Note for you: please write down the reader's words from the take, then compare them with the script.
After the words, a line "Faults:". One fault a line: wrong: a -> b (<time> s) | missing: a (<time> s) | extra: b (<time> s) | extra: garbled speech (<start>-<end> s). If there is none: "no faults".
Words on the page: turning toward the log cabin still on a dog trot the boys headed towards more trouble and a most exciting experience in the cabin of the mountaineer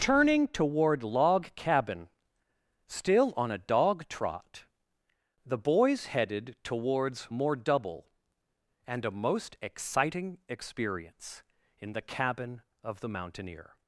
turning toward log cabin still on a dog trot the boys headed towards more double and a most exciting experience in the cabin of the mountaineer
Faults:
missing: the (1.0 s)
wrong: trouble -> double (7.6 s)